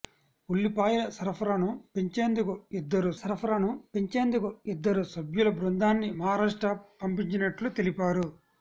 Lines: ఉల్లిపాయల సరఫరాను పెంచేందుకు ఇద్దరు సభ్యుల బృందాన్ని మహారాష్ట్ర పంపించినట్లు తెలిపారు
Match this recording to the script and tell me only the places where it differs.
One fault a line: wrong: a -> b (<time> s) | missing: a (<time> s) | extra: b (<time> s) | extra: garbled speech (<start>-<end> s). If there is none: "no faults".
extra: సరఫరాను పెంచేందుకు ఇద్దరు (3.2 s)